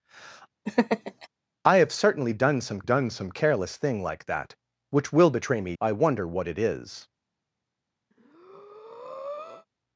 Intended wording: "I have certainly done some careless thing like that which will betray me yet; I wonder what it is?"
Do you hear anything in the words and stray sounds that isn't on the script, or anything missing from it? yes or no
yes